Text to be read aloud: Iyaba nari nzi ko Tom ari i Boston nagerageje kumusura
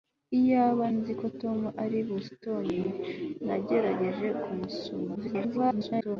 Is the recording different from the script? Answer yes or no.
yes